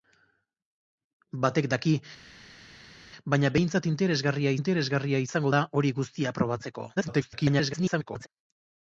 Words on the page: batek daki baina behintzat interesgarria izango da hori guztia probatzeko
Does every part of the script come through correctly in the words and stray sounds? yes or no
no